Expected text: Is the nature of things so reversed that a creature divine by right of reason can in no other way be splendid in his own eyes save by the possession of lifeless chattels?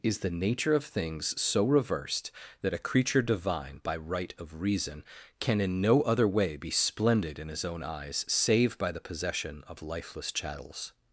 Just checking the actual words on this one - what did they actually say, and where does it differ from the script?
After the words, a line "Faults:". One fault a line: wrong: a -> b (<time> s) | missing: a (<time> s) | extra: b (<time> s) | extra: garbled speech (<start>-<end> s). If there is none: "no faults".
Is the nature of things so reversed that a creature divine by right of reason can in no other way be splendid in his own eyes save by the possession of lifeless chattels?
Faults:
no faults